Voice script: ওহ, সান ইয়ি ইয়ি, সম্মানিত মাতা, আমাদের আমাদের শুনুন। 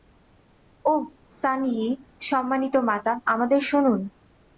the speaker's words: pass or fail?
fail